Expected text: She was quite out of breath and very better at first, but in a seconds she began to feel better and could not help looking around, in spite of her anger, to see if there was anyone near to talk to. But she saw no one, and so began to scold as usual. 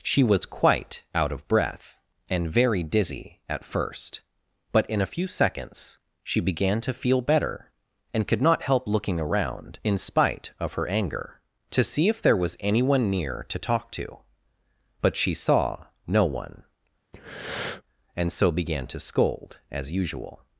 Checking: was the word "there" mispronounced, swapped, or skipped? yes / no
no